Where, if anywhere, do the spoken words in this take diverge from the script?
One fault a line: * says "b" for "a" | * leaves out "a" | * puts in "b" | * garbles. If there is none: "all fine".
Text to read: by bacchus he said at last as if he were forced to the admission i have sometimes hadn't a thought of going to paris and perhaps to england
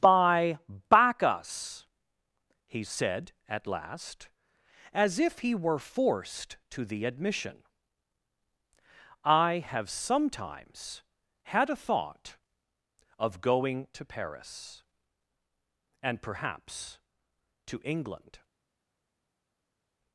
* says "had" for "hadn't"